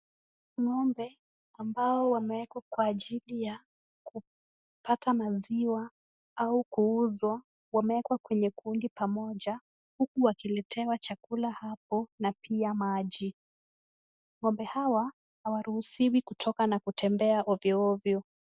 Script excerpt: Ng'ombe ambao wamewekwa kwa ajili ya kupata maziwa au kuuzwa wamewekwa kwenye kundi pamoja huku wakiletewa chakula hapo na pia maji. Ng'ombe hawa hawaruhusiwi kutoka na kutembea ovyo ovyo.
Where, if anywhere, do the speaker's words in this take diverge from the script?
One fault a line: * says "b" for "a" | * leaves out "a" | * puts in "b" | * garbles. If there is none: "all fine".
all fine